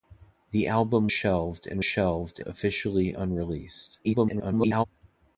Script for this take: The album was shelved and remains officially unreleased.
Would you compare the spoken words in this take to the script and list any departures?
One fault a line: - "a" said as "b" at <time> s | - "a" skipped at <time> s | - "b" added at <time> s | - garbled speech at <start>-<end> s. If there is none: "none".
- "was" skipped at 1.1 s
- "remains" said as "shelved" at 1.8 s
- garbled speech at 4.0-4.8 s